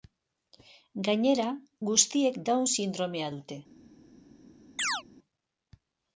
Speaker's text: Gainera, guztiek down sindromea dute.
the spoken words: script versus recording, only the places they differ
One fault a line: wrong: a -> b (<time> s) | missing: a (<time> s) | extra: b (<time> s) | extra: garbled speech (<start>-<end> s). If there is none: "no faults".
no faults